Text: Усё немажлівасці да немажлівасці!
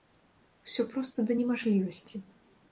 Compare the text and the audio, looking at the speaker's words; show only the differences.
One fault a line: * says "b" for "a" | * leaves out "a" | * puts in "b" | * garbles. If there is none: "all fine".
* says "проста" for "немажлівасці"